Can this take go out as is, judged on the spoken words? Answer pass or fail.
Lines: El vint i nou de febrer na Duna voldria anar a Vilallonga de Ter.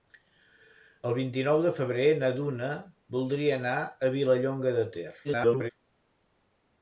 fail